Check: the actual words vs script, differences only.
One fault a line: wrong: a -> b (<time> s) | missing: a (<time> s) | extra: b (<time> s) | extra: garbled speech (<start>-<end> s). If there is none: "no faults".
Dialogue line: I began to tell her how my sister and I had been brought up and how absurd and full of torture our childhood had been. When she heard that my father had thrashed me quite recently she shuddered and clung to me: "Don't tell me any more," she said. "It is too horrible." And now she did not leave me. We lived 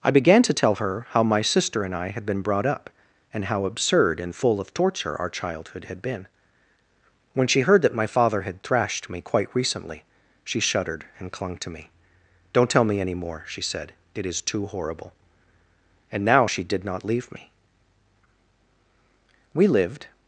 no faults